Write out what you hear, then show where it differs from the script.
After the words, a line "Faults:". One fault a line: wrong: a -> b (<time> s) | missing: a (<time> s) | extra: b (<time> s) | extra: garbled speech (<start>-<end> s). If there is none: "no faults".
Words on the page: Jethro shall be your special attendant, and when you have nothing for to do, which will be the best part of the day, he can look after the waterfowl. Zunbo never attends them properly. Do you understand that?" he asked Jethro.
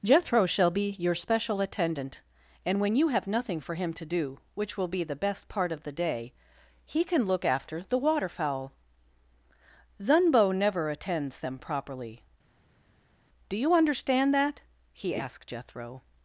Jethro shall be your special attendant, and when you have nothing for him to do, which will be the best part of the day, he can look after the waterfowl. Zunbo never attends them properly. Do you understand that?" he asked Jethro.
Faults:
extra: him (3.8 s)